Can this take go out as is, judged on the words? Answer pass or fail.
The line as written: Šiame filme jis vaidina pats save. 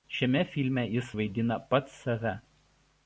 pass